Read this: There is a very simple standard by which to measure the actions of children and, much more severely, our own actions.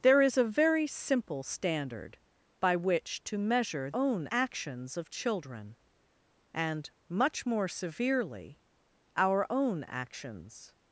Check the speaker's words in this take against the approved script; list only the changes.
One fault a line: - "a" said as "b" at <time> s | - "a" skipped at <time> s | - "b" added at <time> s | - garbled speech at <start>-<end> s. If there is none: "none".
- "the" said as "own" at 3.9 s